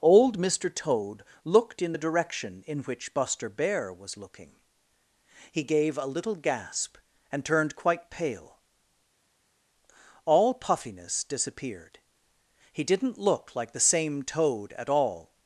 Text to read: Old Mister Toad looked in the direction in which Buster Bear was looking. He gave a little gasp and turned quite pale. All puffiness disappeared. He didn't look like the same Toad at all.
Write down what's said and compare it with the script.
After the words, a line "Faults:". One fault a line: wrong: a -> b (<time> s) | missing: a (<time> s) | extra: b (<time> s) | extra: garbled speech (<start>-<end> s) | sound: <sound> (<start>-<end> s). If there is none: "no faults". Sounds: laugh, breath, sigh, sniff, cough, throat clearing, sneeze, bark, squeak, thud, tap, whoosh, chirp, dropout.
Old Mister Toad looked in the direction in which Buster Bear was looking. He gave a little gasp and turned quite pale. All puffiness disappeared. He didn't look like the same Toad at all.
Faults:
no faults